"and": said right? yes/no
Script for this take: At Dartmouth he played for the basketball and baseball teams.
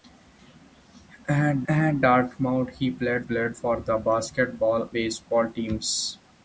no